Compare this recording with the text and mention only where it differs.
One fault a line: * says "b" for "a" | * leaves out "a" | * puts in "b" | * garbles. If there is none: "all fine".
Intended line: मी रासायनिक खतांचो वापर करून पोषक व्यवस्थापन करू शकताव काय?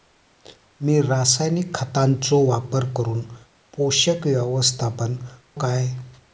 * leaves out "करू शकताव"